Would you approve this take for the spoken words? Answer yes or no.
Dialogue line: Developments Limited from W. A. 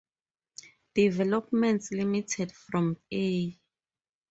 no